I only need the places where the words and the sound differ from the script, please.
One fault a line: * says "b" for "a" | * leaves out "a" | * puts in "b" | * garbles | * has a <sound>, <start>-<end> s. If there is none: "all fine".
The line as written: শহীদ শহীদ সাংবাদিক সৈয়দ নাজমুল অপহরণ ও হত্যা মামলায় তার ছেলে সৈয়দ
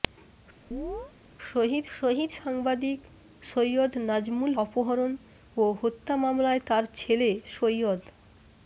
* has a chirp, 0.7-1.1 s